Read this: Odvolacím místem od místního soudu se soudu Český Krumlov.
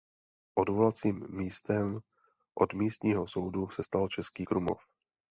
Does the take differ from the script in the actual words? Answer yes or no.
yes